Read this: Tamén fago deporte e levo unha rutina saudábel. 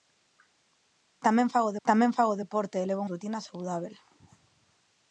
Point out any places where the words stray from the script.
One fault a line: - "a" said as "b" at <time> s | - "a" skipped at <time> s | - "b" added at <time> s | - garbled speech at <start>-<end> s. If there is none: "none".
- "tamén fago" added at 1.9 s
- "unha" skipped at 3.0 s